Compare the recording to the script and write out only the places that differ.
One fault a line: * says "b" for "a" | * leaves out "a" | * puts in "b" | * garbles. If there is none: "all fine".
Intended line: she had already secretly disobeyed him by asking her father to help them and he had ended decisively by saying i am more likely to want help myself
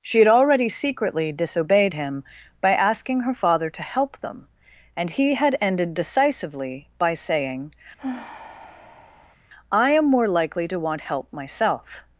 all fine